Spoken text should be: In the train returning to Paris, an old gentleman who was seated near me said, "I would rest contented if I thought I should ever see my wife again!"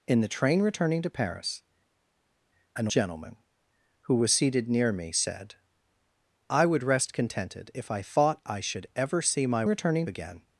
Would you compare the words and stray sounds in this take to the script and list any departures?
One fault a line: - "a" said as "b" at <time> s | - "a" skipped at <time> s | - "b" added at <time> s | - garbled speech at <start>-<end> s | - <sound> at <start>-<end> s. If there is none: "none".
- "old" skipped at 2.9 s
- "wife" said as "returning" at 9.7 s